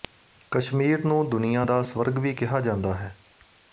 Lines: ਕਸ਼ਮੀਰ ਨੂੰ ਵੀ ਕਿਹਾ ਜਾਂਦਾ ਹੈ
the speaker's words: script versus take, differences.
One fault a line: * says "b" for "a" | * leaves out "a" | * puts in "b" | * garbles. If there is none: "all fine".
* puts in "ਦੁਨੀਆ ਦਾ ਸਵਰਗ"